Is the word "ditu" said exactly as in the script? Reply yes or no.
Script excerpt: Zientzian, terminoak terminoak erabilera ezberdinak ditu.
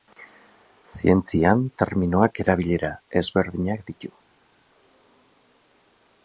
yes